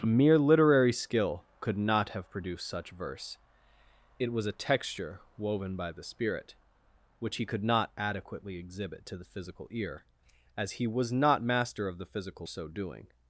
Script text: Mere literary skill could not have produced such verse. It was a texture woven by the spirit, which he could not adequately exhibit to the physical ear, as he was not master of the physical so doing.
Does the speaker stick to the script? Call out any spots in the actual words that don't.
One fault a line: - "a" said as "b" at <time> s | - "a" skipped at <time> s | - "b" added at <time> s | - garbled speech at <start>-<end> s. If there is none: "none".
none